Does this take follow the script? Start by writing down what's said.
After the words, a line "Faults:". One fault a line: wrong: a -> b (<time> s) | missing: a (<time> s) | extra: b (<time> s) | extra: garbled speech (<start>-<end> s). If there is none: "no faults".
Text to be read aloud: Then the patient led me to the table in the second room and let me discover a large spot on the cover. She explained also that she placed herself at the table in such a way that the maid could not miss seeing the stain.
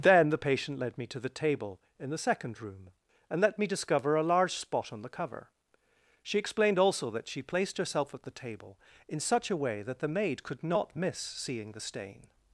Then the patient led me to the table in the second room and let me discover a large spot on the cover. She explained also that she placed herself at the table in such a way that the maid could not miss seeing the stain.
Faults:
no faults